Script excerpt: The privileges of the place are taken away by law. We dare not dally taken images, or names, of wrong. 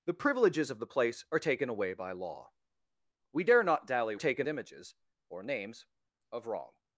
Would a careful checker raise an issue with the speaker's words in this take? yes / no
no